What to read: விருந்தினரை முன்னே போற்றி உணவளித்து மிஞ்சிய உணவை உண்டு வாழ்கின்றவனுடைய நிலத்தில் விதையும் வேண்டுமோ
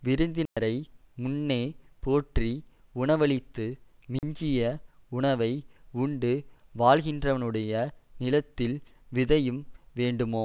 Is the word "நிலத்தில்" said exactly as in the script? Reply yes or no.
yes